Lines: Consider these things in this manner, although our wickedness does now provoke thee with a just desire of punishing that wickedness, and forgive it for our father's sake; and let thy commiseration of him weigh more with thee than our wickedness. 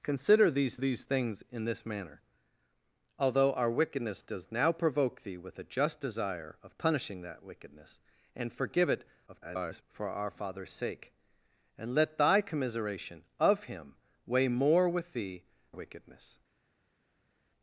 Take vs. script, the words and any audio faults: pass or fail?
fail